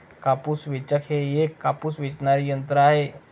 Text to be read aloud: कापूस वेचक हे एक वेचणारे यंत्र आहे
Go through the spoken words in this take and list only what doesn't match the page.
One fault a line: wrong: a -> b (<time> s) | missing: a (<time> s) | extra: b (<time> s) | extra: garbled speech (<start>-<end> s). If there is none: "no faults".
extra: कापूस (1.6 s)